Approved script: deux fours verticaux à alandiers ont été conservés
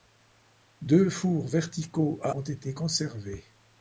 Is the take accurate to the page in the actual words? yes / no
no